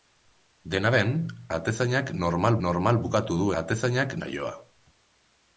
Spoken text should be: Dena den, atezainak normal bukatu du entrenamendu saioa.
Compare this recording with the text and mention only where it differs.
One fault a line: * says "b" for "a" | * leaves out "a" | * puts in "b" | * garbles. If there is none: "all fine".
* puts in "normal"
* says "atezainak" for "entrenamendu"